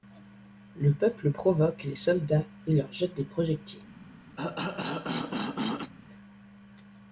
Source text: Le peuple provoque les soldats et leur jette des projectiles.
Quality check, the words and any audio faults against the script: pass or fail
fail